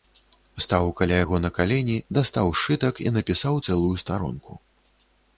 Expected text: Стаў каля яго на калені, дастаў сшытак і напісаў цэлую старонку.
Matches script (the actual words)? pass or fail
pass